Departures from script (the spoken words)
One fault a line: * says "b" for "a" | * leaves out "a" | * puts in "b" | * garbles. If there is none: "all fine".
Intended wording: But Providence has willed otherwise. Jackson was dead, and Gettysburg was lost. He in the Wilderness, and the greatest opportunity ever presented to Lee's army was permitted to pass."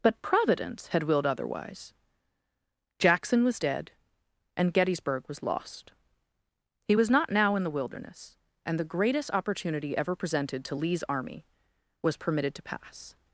* says "had" for "has"
* puts in "was not now"